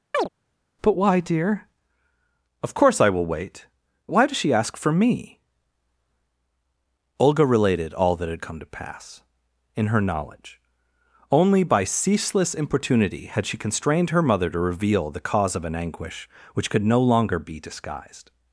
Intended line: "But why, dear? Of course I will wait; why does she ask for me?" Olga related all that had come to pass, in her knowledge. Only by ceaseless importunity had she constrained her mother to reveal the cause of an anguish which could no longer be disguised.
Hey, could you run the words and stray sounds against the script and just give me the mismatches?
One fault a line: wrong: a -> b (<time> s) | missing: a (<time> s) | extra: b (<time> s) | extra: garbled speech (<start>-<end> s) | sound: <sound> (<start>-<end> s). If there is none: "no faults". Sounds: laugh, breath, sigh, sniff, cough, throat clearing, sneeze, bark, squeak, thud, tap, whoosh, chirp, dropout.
sound: chirp (0.1-0.3 s)